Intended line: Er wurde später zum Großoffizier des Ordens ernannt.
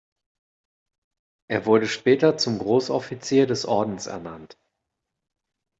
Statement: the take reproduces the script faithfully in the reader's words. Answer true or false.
true